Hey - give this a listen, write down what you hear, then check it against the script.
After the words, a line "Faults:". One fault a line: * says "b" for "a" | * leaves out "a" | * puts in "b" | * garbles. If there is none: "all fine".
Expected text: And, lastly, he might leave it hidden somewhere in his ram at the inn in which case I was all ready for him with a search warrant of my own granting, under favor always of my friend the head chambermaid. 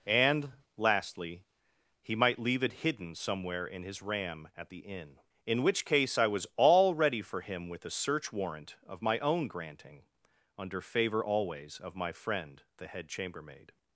And, lastly, he might leave it hidden somewhere in his ram at the inn in which case I was all ready for him with a search warrant of my own granting, under favor always of my friend the head chambermaid.
Faults:
all fine